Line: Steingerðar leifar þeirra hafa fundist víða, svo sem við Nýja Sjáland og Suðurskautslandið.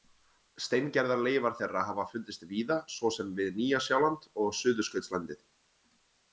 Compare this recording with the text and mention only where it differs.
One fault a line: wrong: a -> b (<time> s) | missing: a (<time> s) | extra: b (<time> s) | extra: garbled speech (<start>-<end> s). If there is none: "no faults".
no faults